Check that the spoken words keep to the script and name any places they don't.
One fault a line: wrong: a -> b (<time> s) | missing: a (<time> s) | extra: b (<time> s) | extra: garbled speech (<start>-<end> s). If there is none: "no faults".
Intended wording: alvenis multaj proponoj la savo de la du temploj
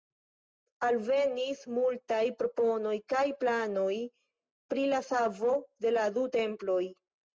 extra: kaj planoj pri (3.1 s)